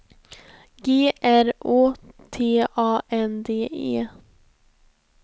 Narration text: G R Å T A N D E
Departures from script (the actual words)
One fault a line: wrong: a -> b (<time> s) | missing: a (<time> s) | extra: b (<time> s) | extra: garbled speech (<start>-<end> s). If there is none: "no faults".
no faults